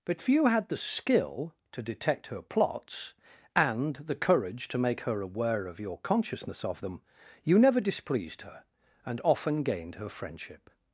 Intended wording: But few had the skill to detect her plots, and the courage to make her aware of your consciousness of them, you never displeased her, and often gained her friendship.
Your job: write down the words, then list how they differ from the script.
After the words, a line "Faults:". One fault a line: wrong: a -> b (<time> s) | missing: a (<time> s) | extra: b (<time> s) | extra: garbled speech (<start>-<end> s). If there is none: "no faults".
But few had the skill to detect her plots, and the courage to make her aware of your consciousness of them, you never displeased her, and often gained her friendship.
Faults:
no faults